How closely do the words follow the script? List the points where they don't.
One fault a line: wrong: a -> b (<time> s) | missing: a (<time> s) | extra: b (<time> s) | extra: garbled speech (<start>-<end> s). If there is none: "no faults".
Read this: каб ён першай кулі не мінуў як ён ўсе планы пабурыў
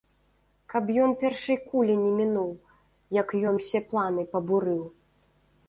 no faults